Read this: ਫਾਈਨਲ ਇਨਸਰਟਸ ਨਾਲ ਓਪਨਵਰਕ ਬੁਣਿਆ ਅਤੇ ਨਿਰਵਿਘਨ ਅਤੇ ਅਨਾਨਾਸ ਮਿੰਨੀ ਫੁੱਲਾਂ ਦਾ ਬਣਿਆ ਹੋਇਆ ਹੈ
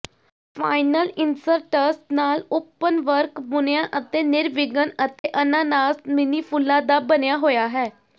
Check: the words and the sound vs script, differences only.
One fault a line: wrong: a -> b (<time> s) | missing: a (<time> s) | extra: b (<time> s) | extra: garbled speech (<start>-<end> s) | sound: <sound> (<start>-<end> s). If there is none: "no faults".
sound: dropout (5.2-5.2 s)